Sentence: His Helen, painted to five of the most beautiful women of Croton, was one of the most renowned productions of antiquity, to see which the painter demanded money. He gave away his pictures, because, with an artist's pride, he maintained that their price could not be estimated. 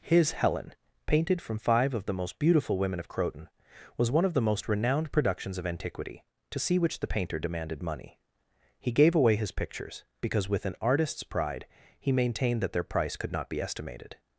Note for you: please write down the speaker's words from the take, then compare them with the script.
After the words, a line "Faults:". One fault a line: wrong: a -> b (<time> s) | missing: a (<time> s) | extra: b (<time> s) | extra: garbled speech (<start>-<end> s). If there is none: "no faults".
His Helen, painted from five of the most beautiful women of Croton, was one of the most renowned productions of antiquity, to see which the painter demanded money. He gave away his pictures, because, with an artist's pride, he maintained that their price could not be estimated.
Faults:
wrong: to -> from (1.4 s)